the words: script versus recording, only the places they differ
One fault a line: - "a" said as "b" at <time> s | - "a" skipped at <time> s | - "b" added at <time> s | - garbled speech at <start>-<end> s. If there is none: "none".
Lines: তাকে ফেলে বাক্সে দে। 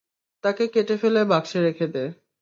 - "কেটে" added at 0.7 s
- "রেখে" added at 1.6 s